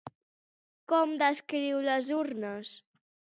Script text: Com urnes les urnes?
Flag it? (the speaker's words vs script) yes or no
yes